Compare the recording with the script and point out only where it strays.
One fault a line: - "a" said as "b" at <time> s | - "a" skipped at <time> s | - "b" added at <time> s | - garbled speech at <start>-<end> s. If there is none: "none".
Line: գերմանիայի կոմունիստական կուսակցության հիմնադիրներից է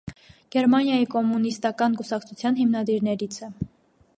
none